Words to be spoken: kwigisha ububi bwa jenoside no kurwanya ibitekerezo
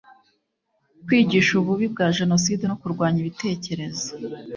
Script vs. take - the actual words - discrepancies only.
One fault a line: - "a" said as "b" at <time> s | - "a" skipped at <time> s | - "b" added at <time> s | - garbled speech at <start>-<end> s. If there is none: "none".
none